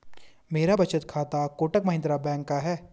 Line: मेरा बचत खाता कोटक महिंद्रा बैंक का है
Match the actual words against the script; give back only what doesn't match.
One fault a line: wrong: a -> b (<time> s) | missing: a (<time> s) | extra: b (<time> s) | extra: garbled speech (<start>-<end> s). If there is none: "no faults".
no faults